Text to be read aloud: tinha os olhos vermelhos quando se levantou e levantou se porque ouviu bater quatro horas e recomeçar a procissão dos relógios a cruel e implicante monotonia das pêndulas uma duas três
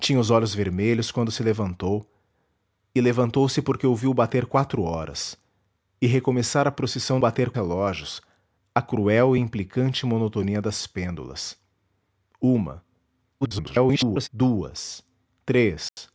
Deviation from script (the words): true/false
true